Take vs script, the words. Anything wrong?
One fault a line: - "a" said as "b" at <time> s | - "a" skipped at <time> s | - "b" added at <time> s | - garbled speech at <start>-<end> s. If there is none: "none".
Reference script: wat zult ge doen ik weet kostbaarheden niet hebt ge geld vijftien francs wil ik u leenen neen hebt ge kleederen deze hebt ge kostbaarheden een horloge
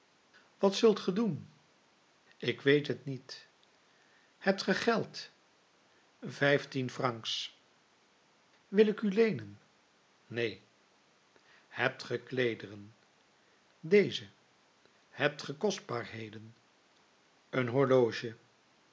- "kostbaarheden" said as "het" at 2.9 s